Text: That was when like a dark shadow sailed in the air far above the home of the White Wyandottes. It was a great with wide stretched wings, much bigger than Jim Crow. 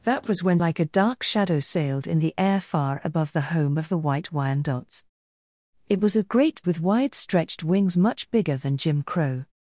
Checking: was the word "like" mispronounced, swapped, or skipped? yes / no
no